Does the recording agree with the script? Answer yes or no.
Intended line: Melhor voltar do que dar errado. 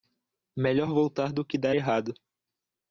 yes